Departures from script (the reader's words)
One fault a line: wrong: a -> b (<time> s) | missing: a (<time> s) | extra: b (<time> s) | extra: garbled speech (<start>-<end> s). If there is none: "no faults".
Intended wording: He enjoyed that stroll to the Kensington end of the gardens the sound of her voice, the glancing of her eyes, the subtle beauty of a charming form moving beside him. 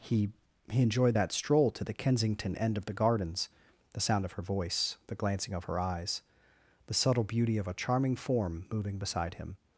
extra: he (0.7 s)